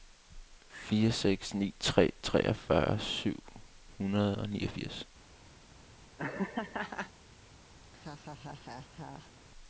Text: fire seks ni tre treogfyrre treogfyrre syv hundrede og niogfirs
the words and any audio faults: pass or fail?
fail